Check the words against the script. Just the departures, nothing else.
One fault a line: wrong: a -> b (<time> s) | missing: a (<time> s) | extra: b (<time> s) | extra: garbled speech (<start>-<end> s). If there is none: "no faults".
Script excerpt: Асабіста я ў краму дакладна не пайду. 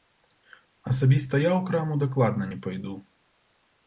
no faults